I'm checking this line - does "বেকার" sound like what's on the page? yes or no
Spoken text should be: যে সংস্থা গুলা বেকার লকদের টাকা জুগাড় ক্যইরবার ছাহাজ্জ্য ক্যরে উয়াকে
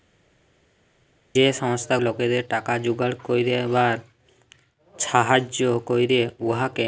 no